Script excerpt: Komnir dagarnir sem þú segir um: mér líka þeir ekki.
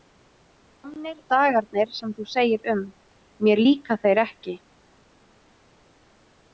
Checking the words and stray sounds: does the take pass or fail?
pass